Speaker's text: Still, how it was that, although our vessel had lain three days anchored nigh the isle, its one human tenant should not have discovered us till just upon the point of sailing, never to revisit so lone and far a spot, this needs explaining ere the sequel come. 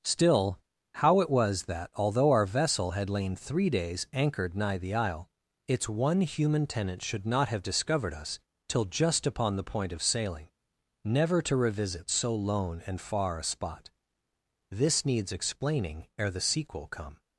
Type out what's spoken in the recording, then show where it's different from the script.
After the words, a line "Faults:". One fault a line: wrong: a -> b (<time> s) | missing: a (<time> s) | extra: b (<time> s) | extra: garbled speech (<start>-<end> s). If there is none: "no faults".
Still, how it was that, although our vessel had lain three days anchored nigh the isle, its one human tenant should not have discovered us till just upon the point of sailing, never to revisit so lone and far a spot, this needs explaining ere the sequel come.
Faults:
no faults